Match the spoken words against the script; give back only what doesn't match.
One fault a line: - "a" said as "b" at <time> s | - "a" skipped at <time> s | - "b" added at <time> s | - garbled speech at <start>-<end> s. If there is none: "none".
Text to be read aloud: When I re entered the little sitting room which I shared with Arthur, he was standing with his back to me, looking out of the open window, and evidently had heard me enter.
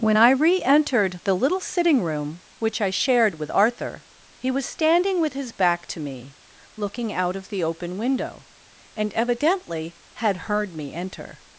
none